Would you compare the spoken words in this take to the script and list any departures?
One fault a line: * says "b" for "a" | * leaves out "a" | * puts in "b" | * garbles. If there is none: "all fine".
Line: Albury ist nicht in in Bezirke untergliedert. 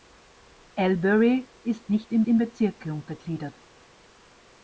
all fine